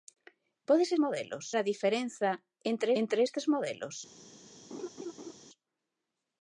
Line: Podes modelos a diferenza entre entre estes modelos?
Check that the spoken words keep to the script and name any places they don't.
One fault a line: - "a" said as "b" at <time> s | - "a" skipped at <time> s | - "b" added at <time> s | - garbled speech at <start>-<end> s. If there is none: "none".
none